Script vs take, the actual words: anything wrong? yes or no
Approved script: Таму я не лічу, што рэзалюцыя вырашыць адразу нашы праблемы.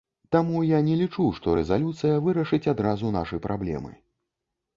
no